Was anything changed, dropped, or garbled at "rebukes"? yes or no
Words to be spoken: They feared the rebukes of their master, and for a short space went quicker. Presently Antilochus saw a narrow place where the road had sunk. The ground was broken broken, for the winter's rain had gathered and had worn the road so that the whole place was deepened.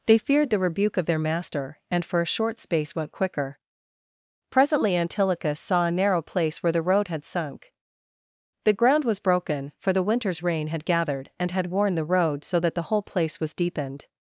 yes